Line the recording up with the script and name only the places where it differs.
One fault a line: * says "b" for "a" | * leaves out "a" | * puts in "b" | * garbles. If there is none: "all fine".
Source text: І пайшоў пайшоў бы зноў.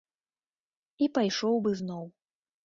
* leaves out "пайшоў"